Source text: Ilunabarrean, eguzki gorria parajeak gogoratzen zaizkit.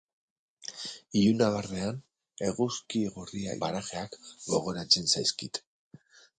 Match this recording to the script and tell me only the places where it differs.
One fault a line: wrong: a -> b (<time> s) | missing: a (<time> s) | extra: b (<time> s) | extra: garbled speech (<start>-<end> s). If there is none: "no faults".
no faults